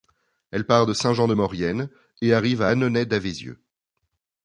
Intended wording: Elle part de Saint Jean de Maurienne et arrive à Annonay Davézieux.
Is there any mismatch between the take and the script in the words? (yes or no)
no